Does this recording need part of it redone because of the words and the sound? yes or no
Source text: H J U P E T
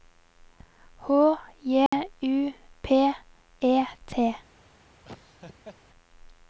yes